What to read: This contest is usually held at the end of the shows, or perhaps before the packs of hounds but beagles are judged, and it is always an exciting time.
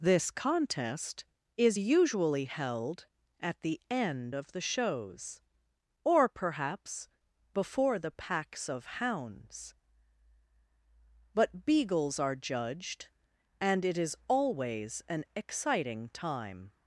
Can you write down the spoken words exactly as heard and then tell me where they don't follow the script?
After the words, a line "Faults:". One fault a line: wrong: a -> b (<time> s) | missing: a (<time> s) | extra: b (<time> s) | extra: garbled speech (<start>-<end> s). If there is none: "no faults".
This contest is usually held at the end of the shows, or perhaps before the packs of hounds but beagles are judged, and it is always an exciting time.
Faults:
no faults